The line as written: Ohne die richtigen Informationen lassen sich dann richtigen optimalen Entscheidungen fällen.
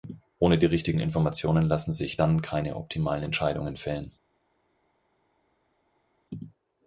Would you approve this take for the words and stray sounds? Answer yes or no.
no